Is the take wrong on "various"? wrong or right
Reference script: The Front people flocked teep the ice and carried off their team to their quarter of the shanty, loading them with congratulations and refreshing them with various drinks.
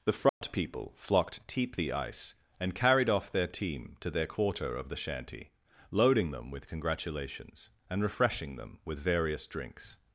right